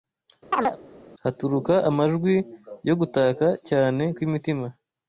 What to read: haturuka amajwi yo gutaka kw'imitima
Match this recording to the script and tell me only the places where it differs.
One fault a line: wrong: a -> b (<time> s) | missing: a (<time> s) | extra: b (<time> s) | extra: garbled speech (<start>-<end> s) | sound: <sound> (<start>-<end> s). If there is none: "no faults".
sound: chirp (0.5-0.8 s)
extra: cyane (3.7 s)